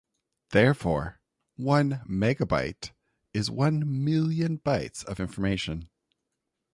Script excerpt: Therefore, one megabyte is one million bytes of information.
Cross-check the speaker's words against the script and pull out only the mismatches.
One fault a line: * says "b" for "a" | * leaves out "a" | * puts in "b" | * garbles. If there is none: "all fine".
all fine